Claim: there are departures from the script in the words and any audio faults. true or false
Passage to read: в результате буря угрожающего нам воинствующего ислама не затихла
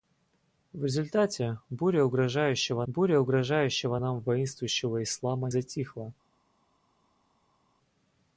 true